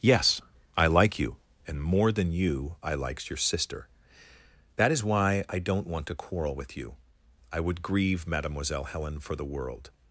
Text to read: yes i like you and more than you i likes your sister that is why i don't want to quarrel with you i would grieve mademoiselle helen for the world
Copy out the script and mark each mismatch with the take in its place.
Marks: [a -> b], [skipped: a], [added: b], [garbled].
yes i like you and more than you i likes your sister that is why i don't want to quarrel with you i would grieve mademoiselle helen for the world